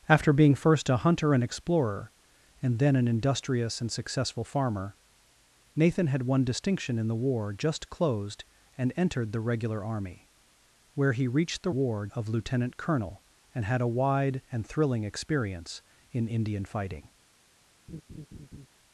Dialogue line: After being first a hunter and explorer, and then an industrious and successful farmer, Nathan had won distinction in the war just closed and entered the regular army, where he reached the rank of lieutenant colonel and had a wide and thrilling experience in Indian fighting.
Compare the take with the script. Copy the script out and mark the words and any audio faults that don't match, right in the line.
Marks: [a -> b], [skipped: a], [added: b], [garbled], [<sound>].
After being first a hunter and explorer, and then an industrious and successful farmer, Nathan had won distinction in the war just closed and entered the regular army, where he reached the [rank -> war] of lieutenant colonel and had a wide and thrilling experience in Indian fighting. [laugh]